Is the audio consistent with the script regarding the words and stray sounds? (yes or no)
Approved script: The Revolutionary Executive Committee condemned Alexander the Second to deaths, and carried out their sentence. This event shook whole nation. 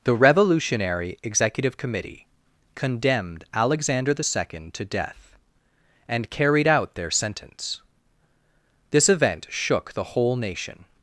no